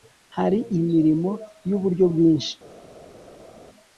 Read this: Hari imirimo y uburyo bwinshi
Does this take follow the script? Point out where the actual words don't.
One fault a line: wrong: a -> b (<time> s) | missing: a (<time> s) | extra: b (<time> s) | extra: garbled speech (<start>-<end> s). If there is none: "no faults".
no faults